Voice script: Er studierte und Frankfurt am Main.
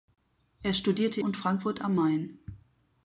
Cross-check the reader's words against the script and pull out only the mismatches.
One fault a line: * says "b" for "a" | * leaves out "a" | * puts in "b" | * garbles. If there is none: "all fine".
all fine